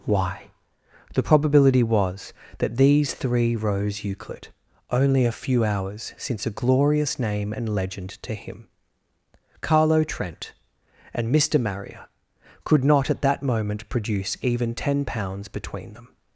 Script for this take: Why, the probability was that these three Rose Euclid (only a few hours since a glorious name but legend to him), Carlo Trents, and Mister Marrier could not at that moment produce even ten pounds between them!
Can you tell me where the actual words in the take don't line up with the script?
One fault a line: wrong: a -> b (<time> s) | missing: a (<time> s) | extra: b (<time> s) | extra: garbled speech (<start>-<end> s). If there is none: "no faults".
wrong: but -> and (7.5 s)
wrong: Trents -> Trent (10.0 s)